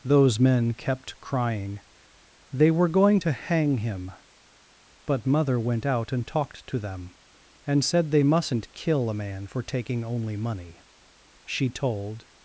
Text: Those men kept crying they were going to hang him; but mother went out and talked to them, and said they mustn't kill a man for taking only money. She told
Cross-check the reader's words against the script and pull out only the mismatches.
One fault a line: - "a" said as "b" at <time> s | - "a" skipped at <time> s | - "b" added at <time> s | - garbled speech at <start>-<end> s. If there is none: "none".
none